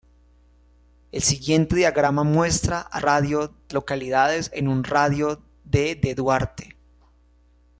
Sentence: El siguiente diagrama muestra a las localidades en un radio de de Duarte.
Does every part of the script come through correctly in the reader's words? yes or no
no